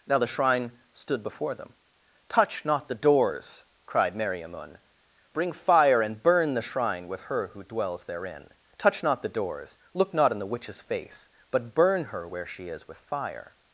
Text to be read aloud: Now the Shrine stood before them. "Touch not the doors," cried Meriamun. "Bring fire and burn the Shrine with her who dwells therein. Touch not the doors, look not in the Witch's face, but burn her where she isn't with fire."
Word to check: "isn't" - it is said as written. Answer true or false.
false